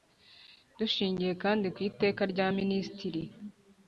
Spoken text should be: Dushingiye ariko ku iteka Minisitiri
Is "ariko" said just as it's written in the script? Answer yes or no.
no